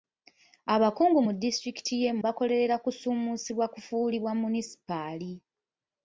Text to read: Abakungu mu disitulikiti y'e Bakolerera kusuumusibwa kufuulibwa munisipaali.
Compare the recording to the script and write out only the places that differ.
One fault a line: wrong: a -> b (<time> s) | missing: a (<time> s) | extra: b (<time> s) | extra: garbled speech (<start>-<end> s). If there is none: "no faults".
no faults